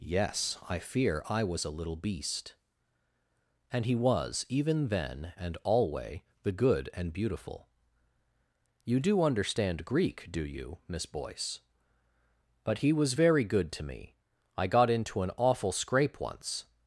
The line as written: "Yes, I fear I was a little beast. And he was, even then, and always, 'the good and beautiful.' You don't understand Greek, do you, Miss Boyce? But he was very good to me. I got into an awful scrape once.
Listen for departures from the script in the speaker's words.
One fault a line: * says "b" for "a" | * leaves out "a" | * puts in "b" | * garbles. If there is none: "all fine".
* says "alway" for "always"
* says "do" for "don't"